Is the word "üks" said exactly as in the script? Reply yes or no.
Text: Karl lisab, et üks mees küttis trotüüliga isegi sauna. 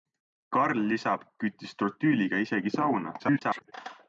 no